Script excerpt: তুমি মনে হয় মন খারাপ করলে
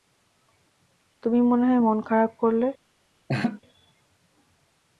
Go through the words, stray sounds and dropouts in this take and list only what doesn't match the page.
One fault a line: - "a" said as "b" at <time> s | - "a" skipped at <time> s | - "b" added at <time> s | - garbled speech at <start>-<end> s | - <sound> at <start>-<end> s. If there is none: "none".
- laugh at 3.3-3.6 s